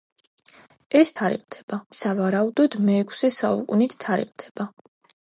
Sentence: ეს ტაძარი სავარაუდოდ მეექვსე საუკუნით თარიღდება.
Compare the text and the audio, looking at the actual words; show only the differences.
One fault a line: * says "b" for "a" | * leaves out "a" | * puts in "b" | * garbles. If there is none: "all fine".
* says "თარიღდება" for "ტაძარი"